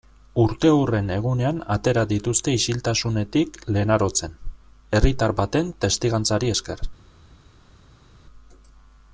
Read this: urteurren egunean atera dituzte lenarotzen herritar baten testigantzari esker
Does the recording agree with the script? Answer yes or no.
no